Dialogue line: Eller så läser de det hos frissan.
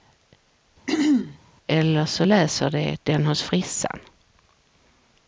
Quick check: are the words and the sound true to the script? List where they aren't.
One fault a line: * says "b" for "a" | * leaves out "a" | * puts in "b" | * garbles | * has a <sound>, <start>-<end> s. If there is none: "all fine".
* has a throat clearing, 0.9-1.4 s
* says "den" for "det"